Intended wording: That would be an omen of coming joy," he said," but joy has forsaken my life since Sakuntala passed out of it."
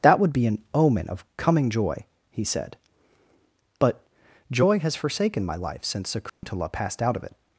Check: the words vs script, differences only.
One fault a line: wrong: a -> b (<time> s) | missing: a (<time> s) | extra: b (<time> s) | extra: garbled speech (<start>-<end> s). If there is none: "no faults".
no faults